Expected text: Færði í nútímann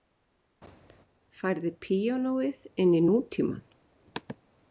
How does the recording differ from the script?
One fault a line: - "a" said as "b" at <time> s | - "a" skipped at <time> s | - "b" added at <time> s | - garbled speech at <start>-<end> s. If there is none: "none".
- "píanóið inn" added at 1.9 s